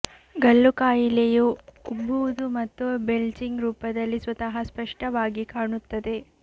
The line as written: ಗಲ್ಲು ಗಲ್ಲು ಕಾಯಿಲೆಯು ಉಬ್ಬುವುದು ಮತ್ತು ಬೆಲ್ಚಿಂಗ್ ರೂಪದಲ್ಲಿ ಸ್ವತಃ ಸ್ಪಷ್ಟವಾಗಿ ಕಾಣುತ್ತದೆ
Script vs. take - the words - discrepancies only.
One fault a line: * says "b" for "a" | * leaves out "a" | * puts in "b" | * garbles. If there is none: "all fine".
* leaves out "ಗಲ್ಲು"